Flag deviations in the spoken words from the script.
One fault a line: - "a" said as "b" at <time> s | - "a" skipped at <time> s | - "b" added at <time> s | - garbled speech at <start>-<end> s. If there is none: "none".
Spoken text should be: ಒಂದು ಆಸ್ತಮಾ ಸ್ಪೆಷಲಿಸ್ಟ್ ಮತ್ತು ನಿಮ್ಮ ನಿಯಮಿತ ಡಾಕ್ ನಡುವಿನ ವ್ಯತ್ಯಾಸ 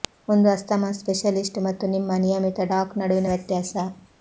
none